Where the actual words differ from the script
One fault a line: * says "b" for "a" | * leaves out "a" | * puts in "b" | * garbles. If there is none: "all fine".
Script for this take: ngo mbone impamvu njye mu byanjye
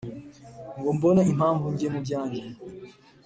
all fine